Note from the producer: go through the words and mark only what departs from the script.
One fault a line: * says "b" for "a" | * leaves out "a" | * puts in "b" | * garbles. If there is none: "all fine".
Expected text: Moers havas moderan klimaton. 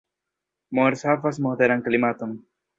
all fine